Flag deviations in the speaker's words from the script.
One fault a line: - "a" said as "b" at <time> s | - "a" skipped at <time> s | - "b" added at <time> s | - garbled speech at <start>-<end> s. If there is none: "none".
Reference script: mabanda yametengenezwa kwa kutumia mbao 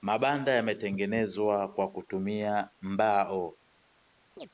none